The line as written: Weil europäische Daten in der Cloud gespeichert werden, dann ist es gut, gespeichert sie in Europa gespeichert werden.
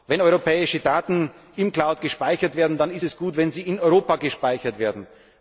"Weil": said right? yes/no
no